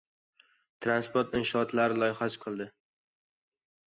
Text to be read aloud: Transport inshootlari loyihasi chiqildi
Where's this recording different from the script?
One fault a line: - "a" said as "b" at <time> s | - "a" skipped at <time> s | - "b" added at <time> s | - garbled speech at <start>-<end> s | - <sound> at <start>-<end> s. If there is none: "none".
none